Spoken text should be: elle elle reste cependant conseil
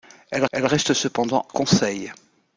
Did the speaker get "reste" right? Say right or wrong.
right